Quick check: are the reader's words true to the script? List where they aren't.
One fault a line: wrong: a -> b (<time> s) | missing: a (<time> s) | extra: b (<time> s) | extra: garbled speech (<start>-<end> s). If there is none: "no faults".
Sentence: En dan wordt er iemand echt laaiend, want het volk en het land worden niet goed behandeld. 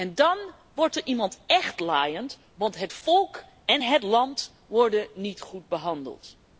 no faults